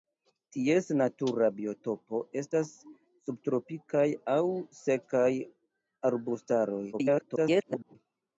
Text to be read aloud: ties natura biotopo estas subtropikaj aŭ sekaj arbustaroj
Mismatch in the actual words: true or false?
true